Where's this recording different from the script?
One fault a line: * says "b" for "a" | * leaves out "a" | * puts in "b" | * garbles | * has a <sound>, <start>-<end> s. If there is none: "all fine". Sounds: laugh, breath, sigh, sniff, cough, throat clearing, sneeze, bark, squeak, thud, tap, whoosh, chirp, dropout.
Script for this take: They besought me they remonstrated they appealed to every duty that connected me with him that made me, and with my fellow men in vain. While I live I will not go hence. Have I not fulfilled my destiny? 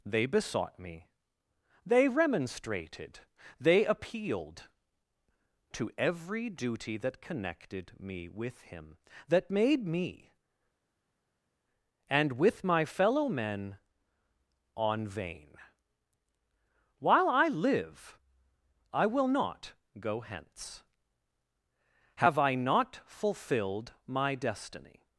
* says "on" for "in"